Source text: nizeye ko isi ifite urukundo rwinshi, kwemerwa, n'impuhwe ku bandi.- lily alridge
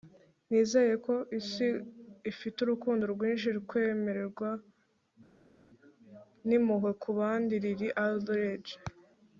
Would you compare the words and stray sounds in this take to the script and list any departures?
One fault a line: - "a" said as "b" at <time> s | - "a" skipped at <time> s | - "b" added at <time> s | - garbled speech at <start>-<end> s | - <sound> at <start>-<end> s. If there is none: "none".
none